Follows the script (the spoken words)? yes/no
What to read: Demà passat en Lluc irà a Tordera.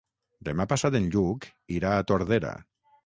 yes